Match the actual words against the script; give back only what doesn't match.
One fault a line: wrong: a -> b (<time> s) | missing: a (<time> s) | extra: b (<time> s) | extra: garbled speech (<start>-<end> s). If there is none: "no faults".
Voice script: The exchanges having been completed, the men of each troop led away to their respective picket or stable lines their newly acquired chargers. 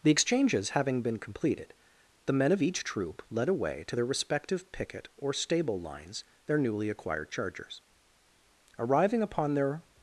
extra: Arriving upon their (8.8 s)